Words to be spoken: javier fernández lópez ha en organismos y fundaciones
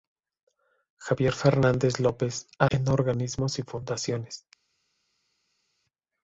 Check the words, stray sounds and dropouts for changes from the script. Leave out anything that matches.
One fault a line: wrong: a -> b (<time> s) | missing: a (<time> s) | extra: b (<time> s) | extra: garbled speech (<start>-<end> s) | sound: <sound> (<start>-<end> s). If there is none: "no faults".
no faults